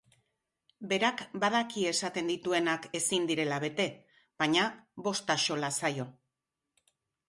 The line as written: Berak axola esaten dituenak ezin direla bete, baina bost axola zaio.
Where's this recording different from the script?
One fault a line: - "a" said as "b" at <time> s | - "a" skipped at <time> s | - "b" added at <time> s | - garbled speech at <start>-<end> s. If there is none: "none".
- "axola" said as "badaki" at 1.4 s